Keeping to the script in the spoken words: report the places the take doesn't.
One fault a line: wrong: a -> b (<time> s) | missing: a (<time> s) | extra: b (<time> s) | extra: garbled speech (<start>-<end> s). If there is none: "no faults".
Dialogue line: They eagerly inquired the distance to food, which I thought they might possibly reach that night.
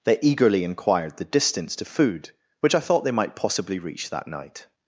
no faults